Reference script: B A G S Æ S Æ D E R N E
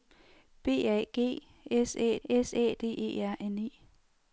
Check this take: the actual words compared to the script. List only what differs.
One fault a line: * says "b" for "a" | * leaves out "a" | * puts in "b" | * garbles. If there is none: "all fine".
all fine